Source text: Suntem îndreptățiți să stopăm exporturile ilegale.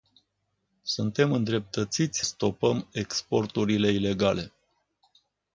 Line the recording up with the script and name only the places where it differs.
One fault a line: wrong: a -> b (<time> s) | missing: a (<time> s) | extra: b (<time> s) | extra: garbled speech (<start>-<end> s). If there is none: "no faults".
missing: să (2.2 s)